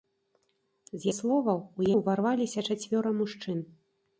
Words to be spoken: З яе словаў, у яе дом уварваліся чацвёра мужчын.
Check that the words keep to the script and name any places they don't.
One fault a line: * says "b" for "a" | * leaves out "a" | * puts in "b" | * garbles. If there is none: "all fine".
* leaves out "яе"
* leaves out "яе дом"